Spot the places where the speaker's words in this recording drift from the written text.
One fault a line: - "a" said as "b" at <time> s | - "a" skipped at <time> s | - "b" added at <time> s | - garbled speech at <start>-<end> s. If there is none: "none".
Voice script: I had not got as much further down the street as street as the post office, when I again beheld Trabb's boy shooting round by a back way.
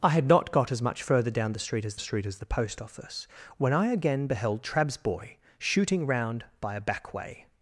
none